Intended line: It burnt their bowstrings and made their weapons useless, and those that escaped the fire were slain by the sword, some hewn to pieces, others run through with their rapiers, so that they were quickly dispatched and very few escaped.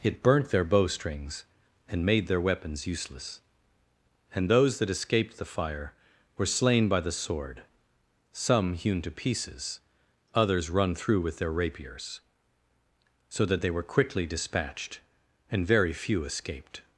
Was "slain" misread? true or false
false